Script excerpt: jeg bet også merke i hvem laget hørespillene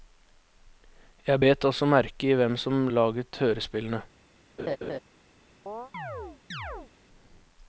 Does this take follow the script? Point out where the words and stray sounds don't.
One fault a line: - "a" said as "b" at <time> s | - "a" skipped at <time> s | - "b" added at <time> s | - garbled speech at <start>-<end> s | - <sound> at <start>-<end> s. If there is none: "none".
- "som" added at 2.6 s
- laugh at 4.6-5.0 s
- chirp at 5.7-6.9 s